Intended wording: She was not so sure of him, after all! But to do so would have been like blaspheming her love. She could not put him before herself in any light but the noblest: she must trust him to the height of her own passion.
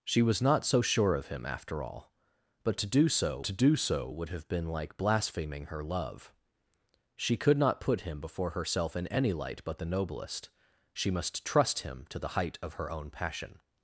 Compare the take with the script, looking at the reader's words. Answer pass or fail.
fail